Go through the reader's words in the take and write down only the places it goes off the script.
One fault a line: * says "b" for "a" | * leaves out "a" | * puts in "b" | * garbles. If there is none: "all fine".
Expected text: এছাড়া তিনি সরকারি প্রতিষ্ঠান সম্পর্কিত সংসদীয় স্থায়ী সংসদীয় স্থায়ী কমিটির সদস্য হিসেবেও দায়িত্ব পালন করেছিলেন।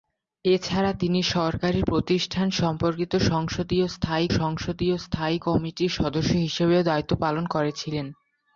all fine